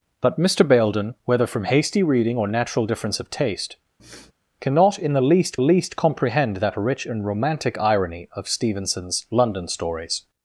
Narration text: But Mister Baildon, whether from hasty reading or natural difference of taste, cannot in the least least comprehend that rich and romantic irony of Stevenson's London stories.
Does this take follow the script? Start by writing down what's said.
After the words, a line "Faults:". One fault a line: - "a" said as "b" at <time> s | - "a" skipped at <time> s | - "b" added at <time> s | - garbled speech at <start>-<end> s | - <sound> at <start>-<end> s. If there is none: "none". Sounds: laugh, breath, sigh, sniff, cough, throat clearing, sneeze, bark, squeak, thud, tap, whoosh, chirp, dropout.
But Mister Baildon, whether from hasty reading or natural difference of taste, cannot in the least least comprehend that rich and romantic irony of Stevenson's London stories.
Faults:
- sniff at 4.0-4.3 s